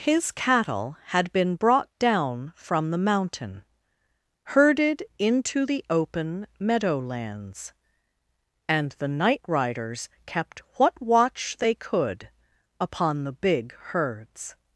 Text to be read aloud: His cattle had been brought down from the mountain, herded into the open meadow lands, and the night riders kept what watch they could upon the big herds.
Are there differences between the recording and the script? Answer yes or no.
no